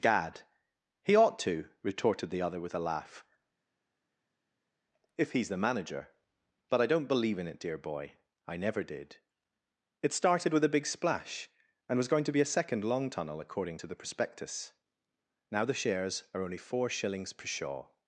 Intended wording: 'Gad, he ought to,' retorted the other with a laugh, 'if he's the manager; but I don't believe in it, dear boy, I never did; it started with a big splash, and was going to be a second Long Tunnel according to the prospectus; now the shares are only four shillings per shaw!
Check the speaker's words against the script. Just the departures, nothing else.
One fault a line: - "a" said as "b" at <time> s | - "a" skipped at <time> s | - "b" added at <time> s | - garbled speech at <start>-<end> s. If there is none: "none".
none